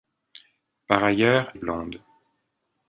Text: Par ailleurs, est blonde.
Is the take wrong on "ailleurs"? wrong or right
right